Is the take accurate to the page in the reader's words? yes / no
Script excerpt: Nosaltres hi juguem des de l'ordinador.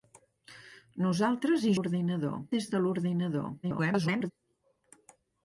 no